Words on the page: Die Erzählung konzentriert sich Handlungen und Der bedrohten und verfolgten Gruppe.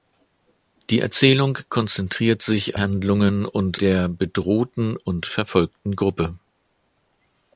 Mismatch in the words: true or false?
false